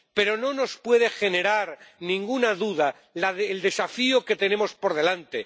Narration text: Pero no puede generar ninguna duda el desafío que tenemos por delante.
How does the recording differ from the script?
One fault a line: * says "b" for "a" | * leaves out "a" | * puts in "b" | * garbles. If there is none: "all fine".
* puts in "nos"